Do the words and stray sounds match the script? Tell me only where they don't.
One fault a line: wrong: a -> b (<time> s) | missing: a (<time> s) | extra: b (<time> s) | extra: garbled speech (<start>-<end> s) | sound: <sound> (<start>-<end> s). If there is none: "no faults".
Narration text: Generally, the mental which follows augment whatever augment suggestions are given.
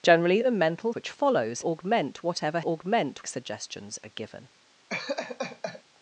sound: laugh (4.9-5.8 s)